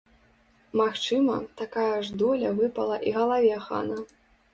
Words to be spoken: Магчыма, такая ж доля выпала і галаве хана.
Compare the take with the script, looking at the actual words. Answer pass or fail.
pass